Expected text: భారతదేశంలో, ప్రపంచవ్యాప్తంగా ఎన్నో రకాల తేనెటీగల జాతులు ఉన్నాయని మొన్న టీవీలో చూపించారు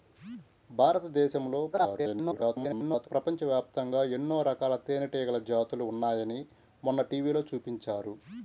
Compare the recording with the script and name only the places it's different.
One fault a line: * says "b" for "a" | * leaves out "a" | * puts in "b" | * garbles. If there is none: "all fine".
* garbles